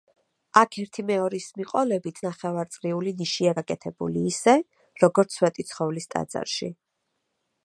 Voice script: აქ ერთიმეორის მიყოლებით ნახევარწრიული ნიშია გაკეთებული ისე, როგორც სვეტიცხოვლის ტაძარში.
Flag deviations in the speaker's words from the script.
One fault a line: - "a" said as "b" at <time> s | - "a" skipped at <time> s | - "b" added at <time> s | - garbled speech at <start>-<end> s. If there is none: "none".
none